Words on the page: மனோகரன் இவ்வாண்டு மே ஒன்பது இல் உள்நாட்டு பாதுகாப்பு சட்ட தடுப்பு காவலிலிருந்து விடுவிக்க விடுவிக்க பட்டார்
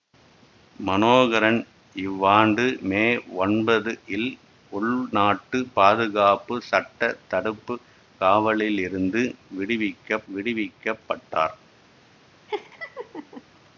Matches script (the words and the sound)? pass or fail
fail